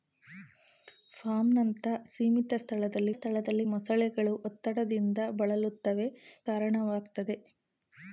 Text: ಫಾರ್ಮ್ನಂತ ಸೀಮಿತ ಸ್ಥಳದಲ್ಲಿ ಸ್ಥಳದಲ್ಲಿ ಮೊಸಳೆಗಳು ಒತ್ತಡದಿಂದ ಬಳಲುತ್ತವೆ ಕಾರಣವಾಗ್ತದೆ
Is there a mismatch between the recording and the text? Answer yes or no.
no